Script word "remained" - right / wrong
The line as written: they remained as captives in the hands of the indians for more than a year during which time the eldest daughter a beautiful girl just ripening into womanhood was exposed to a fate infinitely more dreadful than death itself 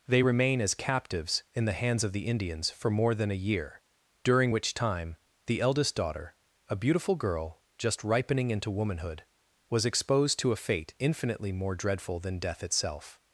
wrong